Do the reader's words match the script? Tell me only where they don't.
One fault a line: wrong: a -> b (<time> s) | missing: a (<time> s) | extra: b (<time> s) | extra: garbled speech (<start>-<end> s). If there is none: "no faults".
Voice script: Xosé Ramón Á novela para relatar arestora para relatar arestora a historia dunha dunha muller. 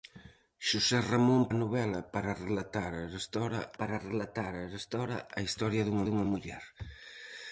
no faults